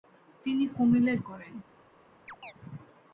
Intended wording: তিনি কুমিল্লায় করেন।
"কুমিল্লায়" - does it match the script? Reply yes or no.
yes